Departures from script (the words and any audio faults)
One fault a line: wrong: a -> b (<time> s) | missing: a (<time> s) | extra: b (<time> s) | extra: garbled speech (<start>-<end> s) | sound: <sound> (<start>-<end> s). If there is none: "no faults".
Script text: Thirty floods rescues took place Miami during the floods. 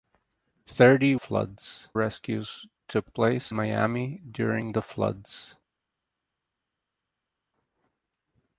no faults